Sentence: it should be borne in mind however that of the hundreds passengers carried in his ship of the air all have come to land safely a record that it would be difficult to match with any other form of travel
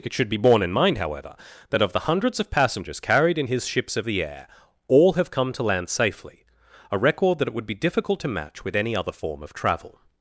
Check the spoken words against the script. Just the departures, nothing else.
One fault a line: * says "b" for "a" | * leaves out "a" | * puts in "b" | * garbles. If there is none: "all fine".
* puts in "of"
* says "ships" for "ship"